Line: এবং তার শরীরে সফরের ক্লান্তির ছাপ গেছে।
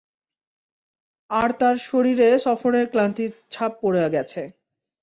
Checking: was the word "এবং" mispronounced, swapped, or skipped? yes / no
yes